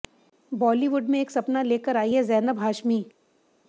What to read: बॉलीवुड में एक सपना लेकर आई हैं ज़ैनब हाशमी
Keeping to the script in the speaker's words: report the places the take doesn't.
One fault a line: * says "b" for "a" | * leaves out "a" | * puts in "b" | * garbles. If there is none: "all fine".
all fine